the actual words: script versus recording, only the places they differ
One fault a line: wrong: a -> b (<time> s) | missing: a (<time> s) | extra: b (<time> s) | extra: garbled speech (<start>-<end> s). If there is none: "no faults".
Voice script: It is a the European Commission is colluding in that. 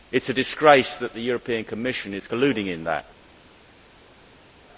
extra: disgrace that (0.3 s)